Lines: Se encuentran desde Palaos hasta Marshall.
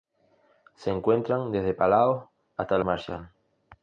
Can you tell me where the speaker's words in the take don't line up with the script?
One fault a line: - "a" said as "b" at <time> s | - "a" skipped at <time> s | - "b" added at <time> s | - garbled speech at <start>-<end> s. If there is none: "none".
none